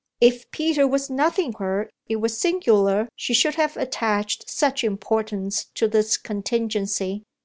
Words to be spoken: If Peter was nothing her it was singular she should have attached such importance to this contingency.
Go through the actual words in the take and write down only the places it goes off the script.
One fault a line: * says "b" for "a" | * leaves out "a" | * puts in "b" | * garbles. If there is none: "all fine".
all fine